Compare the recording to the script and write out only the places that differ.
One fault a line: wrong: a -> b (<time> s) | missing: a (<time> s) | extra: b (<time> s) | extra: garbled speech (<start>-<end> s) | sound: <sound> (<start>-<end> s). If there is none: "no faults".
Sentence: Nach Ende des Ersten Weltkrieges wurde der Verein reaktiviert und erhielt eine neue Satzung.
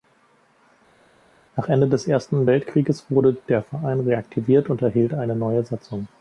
no faults